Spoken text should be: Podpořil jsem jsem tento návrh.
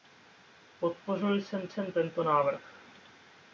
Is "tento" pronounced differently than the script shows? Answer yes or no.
no